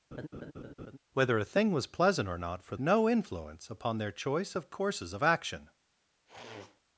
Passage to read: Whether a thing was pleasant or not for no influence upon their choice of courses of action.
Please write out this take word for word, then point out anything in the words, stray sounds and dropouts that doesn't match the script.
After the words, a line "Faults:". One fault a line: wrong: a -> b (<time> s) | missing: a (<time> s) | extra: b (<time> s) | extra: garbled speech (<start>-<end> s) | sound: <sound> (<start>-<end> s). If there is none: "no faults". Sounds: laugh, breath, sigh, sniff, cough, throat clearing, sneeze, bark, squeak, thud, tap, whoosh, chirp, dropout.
Whether a thing was pleasant or not for no influence upon their choice of courses of action.
Faults:
sound: laugh (0.1-1.0 s)
sound: sniff (6.3-6.8 s)